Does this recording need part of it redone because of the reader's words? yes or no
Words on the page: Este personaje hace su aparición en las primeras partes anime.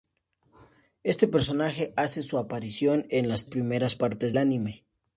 no